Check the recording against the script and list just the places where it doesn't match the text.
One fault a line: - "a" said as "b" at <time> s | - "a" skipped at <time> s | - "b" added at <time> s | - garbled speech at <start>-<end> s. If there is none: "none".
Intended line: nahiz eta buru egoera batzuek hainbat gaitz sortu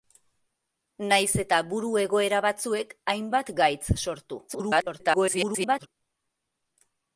- garbled speech at 4.5-5.9 s